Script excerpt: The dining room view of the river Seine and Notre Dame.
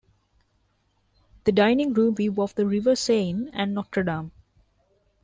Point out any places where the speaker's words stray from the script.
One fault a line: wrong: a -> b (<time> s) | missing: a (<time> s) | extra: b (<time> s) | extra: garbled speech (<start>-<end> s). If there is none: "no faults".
no faults